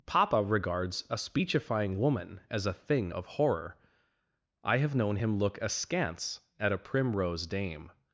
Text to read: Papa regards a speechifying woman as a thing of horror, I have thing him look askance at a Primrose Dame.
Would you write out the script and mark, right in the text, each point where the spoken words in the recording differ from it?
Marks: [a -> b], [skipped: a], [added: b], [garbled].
Papa regards a speechifying woman as a thing of horror, I have [thing -> known] him look askance at a Primrose Dame.